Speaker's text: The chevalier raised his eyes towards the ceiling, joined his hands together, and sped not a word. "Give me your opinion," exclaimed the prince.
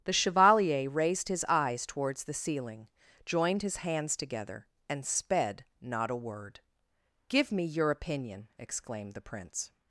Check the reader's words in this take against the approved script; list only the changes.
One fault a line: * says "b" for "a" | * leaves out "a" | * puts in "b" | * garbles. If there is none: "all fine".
all fine